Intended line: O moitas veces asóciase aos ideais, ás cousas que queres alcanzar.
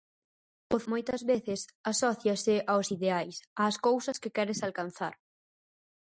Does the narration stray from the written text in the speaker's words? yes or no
no